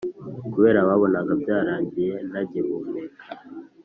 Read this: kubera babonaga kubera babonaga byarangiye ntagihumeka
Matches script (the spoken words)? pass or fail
fail